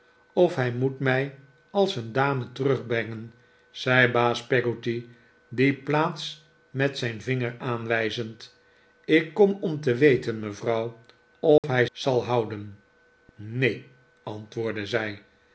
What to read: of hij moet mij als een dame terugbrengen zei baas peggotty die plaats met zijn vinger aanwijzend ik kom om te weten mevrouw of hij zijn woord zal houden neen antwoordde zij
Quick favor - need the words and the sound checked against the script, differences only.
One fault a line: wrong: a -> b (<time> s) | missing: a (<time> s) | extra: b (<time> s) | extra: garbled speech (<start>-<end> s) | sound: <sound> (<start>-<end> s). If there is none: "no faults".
sound: dropout (11.6-11.6 s)
missing: zijn woord (11.9 s)